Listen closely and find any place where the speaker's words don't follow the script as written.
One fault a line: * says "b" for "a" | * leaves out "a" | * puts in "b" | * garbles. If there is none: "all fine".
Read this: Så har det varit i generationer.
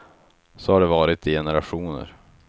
all fine